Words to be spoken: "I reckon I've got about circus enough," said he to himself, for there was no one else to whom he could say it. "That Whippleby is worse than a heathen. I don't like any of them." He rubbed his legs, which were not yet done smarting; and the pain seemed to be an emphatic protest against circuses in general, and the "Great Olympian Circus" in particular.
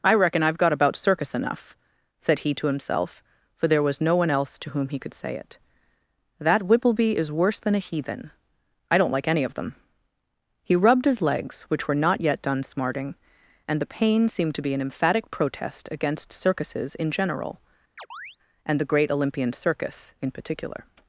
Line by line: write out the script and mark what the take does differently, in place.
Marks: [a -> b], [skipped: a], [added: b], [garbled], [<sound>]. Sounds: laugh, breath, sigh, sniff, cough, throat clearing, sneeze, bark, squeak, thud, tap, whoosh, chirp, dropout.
"I reckon I've got about circus enough," said he to himself, for there was no one else to whom he could say it. "That Whippleby is worse than a heathen. I don't like any of them." He rubbed his legs, which were not yet done smarting; and the pain seemed to be an emphatic protest against circuses in general, [chirp] and the "Great Olympian Circus" in particular.